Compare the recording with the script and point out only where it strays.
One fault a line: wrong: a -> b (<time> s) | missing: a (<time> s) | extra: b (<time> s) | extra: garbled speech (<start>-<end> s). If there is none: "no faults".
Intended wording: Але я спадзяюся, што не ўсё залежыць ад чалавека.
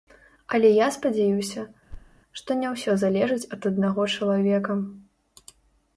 extra: аднаго (3.7 s)